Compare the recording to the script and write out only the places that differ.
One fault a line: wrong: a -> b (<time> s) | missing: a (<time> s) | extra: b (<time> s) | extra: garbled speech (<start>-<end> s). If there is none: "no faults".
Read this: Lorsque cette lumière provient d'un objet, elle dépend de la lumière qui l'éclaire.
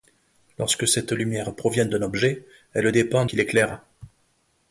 missing: de la lumière (3.2 s)